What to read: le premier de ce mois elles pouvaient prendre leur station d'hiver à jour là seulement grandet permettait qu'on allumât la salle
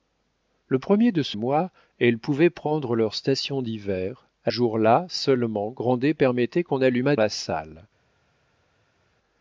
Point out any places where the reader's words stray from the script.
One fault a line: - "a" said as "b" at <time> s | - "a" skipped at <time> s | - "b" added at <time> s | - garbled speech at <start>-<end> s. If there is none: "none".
none